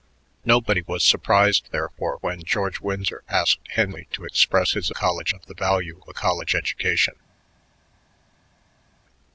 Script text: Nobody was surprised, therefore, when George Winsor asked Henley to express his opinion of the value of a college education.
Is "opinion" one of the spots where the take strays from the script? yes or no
yes